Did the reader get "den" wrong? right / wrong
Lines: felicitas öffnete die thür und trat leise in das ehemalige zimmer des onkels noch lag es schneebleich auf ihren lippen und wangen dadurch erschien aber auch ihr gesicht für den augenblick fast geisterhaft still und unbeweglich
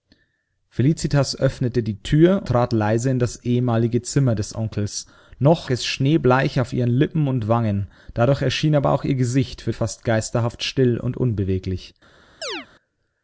wrong